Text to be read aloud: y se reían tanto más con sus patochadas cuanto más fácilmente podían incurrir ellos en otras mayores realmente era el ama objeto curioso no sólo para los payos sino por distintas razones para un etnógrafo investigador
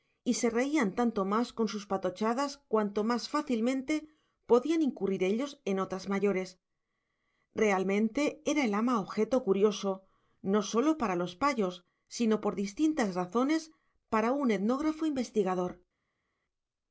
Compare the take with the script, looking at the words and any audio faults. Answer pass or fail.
pass